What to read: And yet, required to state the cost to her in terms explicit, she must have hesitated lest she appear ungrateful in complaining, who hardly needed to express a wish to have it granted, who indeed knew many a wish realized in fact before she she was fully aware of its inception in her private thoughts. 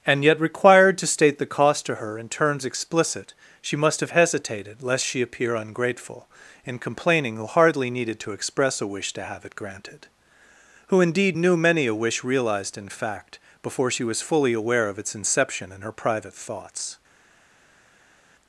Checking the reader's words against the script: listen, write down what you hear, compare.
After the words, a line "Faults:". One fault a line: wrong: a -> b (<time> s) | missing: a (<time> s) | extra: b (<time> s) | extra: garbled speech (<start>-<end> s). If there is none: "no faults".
And yet, required to state the cost to her in terms explicit, she must have hesitated lest she appear ungrateful in complaining, who hardly needed to express a wish to have it granted, who indeed knew many a wish realized in fact before she was fully aware of its inception in her private thoughts.
Faults:
missing: she (14.0 s)